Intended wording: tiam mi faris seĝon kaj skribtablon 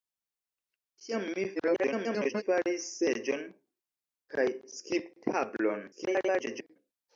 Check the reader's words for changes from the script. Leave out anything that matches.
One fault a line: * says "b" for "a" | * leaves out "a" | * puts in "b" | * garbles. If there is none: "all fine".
* garbles
* garbles